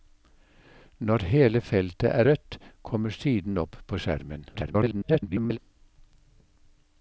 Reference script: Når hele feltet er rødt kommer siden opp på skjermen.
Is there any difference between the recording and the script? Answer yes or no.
yes